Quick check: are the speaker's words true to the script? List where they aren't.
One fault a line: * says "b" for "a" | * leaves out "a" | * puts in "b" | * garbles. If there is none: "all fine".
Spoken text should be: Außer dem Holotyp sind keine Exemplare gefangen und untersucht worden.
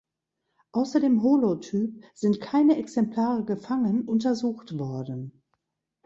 * leaves out "und"